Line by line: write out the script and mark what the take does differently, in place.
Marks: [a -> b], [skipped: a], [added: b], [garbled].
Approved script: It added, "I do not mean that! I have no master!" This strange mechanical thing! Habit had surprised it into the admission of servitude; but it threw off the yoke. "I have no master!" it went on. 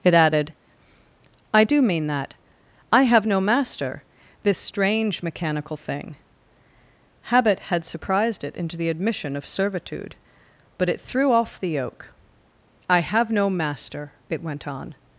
It added, "I do [skipped: not] mean that! I have no master!" This strange mechanical thing! Habit had surprised it into the admission of servitude; but it threw off the yoke. "I have no master!" it went on.